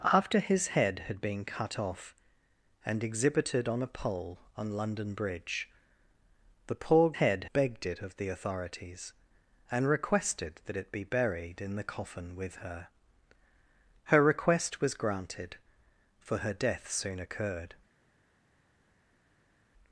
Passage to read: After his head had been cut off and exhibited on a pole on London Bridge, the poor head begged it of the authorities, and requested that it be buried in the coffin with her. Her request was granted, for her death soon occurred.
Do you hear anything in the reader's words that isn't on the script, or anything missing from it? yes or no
no